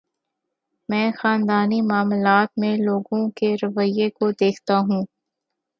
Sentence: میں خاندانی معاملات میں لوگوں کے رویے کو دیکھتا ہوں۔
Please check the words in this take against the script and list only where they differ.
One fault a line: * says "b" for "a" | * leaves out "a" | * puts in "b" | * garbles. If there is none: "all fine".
all fine